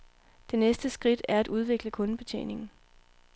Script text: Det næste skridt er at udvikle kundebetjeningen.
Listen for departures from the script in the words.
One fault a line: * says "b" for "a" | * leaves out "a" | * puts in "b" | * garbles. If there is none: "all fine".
all fine